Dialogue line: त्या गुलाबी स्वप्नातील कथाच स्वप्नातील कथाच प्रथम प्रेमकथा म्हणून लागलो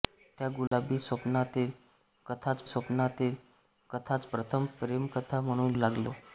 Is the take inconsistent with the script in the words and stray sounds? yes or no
yes